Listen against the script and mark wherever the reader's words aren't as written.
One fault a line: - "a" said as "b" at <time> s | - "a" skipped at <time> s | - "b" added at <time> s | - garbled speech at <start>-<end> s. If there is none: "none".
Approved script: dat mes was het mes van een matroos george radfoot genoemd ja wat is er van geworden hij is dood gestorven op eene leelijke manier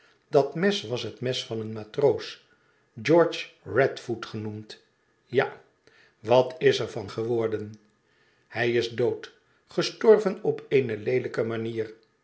none